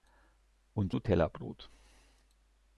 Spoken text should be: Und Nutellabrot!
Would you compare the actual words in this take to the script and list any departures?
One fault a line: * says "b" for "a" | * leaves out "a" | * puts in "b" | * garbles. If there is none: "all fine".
all fine